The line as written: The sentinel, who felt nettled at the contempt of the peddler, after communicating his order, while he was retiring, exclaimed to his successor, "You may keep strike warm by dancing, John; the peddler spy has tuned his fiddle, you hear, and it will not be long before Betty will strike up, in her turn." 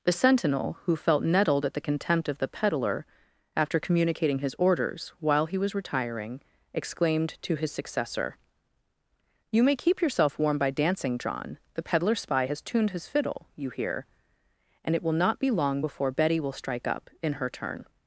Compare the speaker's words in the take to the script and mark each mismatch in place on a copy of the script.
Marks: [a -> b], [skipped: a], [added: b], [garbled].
The sentinel, who felt nettled at the contempt of the peddler, after communicating his [order, -> orders] while he was retiring, exclaimed to his successor, "You may keep [strike -> yourself] warm by dancing, John; the peddler spy has tuned his fiddle, you hear, and it will not be long before Betty will strike up, in her turn."